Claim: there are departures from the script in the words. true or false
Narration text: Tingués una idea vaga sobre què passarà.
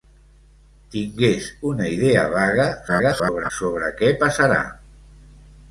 true